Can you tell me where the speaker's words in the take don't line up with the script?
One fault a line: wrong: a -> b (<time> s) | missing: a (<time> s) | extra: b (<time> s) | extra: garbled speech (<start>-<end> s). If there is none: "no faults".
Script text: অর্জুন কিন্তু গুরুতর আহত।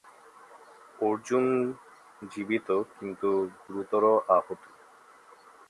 extra: জীবিত (2.3 s)